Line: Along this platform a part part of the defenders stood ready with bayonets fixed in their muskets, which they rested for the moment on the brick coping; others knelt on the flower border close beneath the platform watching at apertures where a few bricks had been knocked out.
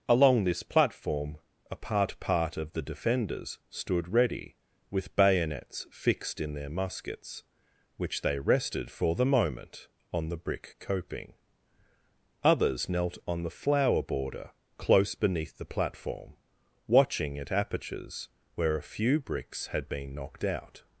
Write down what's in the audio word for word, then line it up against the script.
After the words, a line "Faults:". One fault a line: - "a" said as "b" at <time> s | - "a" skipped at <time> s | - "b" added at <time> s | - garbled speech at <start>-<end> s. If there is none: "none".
Along this platform a part part of the defenders stood ready with bayonets fixed in their muskets, which they rested for the moment on the brick coping; others knelt on the flower border close beneath the platform watching at apertures where a few bricks had been knocked out.
Faults:
none